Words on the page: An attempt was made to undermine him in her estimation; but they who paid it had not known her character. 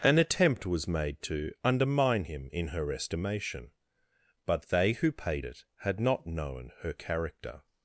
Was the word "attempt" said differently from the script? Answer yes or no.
no